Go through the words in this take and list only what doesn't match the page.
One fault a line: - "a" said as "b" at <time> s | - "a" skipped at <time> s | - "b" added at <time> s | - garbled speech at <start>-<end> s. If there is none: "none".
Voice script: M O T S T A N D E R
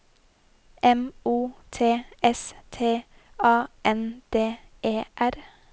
none